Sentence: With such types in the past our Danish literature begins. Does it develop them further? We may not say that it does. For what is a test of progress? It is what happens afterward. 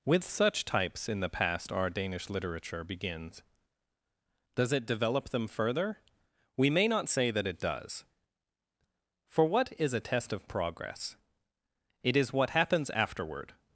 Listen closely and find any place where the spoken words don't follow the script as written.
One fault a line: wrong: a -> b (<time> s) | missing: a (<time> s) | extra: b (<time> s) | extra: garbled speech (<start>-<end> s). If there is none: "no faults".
no faults